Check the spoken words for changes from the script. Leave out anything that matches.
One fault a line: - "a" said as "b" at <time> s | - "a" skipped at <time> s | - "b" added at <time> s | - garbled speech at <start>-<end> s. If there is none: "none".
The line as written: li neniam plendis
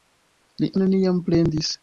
none